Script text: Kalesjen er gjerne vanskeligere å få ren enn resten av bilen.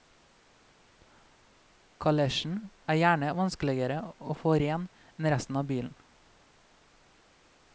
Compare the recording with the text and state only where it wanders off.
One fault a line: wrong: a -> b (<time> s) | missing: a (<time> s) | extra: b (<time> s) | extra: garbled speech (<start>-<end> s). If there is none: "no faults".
no faults